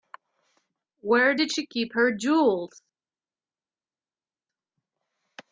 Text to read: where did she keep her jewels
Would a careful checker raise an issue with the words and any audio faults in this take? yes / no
no